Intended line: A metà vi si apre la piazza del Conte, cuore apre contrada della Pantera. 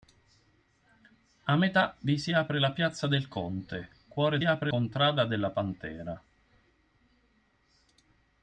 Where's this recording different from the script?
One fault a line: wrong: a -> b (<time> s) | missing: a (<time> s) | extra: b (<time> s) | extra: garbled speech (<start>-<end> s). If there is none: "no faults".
no faults